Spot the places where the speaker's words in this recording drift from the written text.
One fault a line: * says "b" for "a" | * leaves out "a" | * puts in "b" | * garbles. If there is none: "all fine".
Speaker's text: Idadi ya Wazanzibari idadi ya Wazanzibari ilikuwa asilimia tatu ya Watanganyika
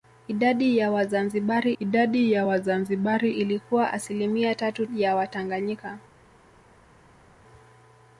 all fine